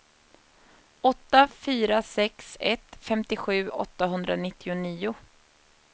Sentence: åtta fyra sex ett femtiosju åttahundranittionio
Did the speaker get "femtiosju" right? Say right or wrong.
right